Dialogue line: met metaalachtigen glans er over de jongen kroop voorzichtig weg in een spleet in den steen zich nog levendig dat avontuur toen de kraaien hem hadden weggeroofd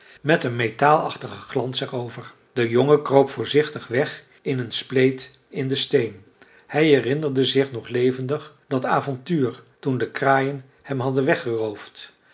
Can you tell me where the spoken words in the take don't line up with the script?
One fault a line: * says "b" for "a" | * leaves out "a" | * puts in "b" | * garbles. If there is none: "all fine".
* puts in "een"
* puts in "hij herinnerde"